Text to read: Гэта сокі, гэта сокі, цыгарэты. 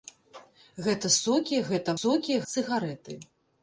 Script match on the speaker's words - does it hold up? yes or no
yes